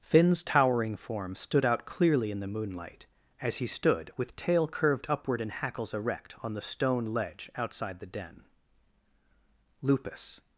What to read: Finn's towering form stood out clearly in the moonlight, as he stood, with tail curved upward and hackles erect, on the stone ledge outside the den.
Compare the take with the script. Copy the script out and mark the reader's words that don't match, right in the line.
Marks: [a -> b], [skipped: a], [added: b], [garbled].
Finn's towering form stood out clearly in the moonlight, as he stood, with tail curved upward and hackles erect, on the stone ledge outside the den. [added: Lupus]